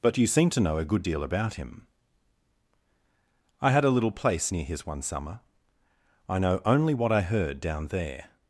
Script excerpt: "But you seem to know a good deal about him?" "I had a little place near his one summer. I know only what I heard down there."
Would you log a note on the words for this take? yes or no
no